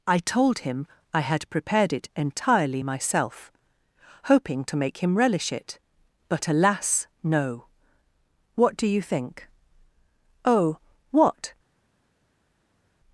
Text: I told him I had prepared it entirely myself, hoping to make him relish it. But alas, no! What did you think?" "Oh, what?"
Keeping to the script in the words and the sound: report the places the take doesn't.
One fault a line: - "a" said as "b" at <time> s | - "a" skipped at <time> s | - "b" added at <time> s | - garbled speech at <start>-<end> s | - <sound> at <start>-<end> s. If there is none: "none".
- "did" said as "do" at 8.8 s